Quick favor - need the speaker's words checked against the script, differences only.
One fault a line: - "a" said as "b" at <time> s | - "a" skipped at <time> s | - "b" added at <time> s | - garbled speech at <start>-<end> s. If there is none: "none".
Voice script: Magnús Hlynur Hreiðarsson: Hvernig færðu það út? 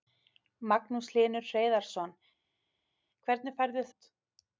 - "það" skipped at 3.9 s